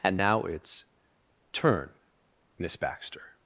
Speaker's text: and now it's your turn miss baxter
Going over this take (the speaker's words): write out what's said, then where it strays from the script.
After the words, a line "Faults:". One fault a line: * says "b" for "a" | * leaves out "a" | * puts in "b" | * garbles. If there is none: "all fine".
and now it's turn miss baxter
Faults:
* leaves out "your"